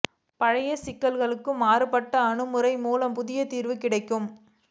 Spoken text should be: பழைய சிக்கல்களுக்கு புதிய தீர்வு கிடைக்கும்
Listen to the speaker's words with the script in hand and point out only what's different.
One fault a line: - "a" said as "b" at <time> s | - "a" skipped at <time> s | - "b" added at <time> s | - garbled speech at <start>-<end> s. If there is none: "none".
- "மாறுபட்ட அணுகுமுறை மூலம்" added at 1.6 s